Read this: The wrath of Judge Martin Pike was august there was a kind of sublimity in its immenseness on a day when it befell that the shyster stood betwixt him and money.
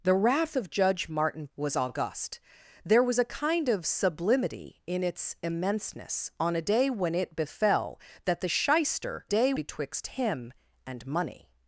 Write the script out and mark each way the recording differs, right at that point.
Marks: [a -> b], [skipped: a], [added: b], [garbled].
The wrath of Judge Martin [skipped: Pike] was august there was a kind of sublimity in its immenseness on a day when it befell that the shyster [stood -> day] betwixt him and money.